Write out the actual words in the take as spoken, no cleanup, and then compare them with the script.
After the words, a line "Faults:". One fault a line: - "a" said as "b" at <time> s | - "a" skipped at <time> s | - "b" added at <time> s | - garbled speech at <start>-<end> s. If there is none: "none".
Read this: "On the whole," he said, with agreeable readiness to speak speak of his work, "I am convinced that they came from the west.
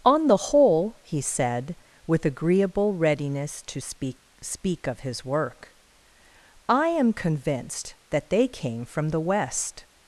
"On the whole," he said, with agreeable readiness to speak speak of his work, "I am convinced that they came from the west.
Faults:
none